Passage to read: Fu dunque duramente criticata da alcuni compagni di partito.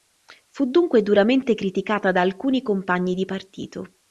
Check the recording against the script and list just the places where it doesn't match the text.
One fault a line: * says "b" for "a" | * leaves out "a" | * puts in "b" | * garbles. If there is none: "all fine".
all fine